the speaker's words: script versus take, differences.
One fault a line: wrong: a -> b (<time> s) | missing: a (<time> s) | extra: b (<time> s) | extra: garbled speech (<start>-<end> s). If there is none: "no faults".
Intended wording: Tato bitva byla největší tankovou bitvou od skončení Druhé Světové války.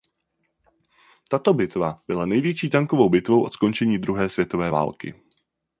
no faults